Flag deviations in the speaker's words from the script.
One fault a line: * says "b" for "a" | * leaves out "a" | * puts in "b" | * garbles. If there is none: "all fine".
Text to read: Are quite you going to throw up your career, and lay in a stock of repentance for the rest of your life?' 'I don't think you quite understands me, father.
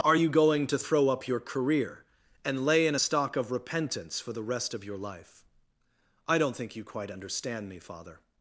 * leaves out "quite"
* says "understand" for "understands"